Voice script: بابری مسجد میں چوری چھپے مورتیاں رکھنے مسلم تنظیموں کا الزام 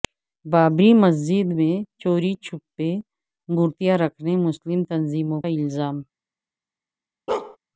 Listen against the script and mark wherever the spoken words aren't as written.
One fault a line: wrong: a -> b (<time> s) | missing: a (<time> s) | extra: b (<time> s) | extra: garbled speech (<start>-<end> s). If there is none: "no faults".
missing: کا (5.4 s)